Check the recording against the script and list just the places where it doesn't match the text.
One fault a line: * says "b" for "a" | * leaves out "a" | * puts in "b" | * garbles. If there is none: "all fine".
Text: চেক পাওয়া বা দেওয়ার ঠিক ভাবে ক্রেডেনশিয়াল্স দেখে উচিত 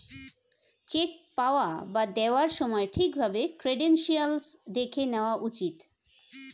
* puts in "সময়"
* puts in "নেওয়া"